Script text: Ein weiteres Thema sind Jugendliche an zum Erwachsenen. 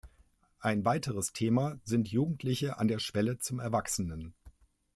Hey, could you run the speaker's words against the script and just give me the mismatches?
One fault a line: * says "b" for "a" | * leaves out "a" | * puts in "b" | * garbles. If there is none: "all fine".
* puts in "der Schwelle"